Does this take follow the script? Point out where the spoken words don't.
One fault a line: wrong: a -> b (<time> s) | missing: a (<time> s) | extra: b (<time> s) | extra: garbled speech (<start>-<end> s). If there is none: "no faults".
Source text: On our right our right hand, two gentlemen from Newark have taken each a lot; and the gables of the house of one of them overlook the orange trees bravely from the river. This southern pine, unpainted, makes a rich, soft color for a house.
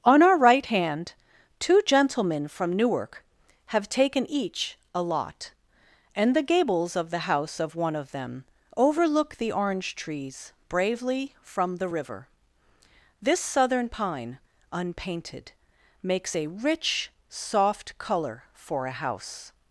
missing: our right (0.7 s)